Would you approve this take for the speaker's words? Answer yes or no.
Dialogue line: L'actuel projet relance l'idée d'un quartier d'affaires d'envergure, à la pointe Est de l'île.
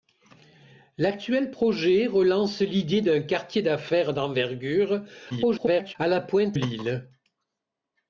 no